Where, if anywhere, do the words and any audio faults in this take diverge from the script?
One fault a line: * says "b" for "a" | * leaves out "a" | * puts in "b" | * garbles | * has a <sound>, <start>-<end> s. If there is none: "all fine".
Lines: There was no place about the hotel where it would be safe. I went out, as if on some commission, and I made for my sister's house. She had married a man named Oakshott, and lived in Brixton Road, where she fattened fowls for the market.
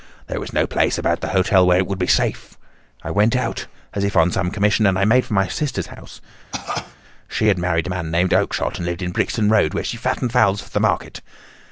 * has a cough, 6.5-7.0 s